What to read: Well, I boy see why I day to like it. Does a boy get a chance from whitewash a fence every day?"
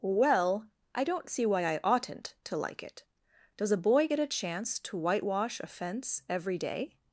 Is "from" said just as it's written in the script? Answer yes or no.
no